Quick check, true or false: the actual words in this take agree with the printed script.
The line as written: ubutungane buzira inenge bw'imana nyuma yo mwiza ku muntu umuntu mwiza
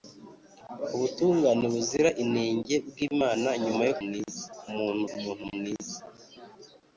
true